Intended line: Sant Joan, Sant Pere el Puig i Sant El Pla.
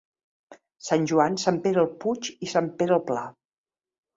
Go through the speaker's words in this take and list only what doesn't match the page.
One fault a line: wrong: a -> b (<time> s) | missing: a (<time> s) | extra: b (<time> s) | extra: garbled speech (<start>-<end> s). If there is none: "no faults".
extra: Pere (2.8 s)